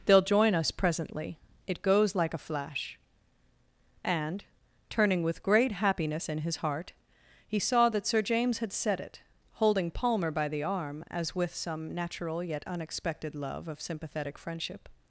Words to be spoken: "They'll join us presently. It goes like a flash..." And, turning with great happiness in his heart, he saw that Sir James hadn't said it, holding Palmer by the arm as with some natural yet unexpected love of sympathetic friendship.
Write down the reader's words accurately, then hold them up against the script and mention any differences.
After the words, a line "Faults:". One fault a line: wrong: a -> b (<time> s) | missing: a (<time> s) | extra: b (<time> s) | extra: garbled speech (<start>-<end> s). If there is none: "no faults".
"They'll join us presently. It goes like a flash..." And, turning with great happiness in his heart, he saw that Sir James had said it, holding Palmer by the arm as with some natural yet unexpected love of sympathetic friendship.
Faults:
wrong: hadn't -> had (8.6 s)